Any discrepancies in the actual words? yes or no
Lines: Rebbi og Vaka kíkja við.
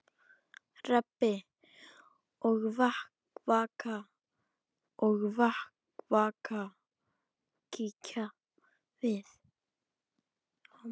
yes